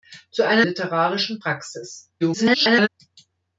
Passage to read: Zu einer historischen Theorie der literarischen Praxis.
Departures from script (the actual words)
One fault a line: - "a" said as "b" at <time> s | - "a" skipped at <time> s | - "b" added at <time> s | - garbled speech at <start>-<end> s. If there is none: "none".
- "historischen Theorie der" skipped at 0.7 s
- garbled speech at 2.2-2.9 s